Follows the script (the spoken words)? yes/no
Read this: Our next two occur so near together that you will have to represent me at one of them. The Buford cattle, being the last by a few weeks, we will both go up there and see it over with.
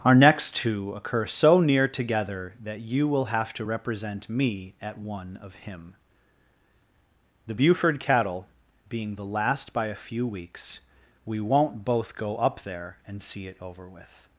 no